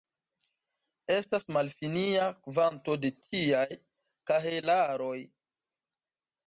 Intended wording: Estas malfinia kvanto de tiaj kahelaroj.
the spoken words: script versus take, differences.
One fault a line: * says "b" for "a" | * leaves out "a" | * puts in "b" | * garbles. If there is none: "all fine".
all fine